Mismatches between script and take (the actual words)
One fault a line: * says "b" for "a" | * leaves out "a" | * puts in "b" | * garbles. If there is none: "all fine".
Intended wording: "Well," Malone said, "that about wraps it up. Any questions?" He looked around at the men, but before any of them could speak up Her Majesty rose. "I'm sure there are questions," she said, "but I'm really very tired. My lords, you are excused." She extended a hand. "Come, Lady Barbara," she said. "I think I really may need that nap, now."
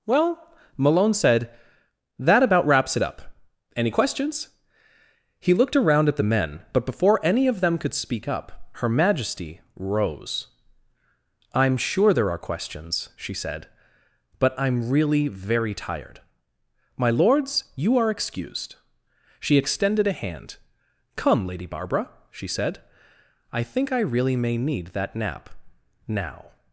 all fine